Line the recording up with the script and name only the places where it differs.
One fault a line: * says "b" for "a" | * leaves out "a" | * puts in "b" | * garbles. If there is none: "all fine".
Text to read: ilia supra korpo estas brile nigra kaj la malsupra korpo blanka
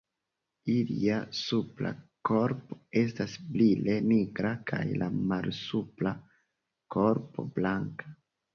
all fine